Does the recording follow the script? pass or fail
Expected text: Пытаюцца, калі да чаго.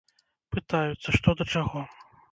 fail